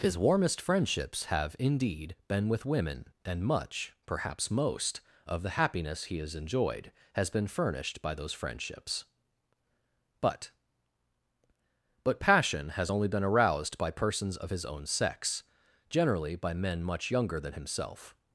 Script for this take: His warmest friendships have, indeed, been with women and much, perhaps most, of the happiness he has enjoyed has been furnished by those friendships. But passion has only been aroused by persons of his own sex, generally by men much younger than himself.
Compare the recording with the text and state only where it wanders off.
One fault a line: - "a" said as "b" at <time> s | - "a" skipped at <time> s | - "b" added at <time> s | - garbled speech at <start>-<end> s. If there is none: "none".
- "But" added at 12.0 s